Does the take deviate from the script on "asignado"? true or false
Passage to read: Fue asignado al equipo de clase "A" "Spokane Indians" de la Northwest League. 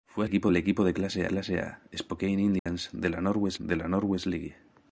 true